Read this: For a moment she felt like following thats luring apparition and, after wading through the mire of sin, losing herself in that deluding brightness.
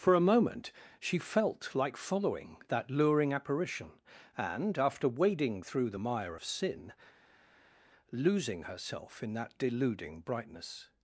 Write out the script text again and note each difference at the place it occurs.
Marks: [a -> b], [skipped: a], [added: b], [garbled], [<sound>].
For a moment she felt like following [thats -> that] luring apparition and, after wading through the mire of sin, losing herself in that deluding brightness.